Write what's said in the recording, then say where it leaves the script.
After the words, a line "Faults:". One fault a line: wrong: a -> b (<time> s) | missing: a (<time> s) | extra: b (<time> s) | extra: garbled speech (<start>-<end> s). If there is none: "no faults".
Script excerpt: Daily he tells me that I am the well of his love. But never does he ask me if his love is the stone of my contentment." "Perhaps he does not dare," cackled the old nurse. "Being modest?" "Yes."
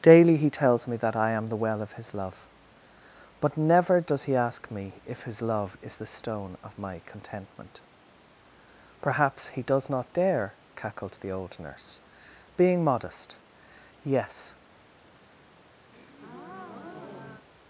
Daily he tells me that I am the well of his love. But never does he ask me if his love is the stone of my contentment." "Perhaps he does not dare," cackled the old nurse. "Being modest?" "Yes."
Faults:
no faults